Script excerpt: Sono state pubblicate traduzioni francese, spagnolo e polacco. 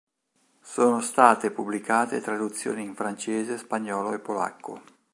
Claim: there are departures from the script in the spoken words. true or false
true